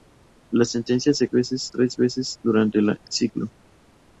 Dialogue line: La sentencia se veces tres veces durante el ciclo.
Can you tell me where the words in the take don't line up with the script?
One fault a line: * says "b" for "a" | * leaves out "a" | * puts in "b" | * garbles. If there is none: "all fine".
all fine